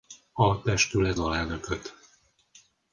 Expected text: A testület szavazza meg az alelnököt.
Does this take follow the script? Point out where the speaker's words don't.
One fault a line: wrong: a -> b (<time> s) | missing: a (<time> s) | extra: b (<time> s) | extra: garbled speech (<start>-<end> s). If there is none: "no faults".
missing: szavazza meg az (1.2 s)